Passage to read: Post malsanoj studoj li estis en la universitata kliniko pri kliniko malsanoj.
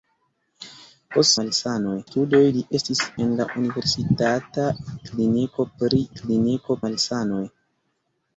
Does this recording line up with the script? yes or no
yes